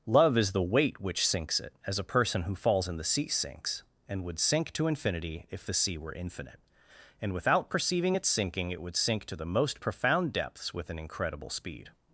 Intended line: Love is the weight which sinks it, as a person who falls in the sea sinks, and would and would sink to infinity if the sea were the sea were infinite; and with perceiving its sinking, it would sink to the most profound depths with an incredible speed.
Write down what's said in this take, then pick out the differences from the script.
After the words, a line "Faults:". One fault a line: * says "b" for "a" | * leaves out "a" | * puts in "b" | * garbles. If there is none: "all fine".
Love is the weight which sinks it, as a person who falls in the sea sinks, and would sink to infinity if the sea were infinite; and without perceiving its sinking, it would sink to the most profound depths with an incredible speed.
Faults:
* leaves out "and would"
* leaves out "the sea were"
* says "without" for "with"